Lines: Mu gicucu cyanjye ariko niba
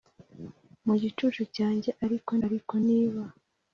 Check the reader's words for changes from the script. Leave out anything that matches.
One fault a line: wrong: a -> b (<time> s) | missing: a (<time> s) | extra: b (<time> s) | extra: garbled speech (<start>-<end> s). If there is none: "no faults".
extra: ariko (2.4 s)